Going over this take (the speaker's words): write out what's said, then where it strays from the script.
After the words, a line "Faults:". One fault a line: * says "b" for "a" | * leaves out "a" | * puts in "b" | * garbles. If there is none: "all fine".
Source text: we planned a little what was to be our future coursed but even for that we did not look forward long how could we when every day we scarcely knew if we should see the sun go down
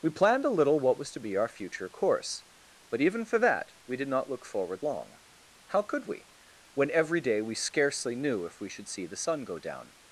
we planned a little what was to be our future course but even for that we did not look forward long how could we when every day we scarcely knew if we should see the sun go down
Faults:
* says "course" for "coursed"